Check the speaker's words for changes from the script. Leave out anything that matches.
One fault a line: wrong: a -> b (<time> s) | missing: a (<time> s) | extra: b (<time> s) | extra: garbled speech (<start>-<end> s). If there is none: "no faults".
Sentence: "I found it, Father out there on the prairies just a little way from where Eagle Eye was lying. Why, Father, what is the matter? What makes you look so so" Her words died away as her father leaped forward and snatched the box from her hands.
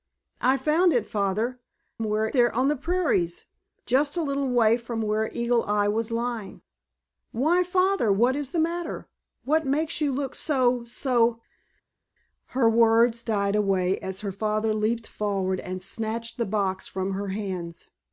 wrong: out -> where (2.0 s)